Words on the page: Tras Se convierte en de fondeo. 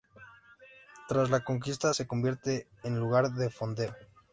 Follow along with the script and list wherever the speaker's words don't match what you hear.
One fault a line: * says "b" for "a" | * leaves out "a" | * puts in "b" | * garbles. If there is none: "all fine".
* puts in "La conquista"
* puts in "lugar"